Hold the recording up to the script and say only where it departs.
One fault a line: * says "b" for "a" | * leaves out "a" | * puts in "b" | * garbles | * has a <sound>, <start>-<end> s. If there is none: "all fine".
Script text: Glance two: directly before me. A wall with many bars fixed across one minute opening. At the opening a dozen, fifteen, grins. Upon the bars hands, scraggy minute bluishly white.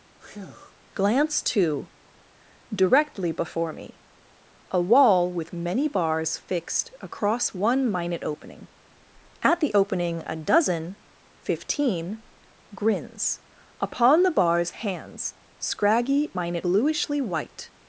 * has a breath, 0.2-0.7 s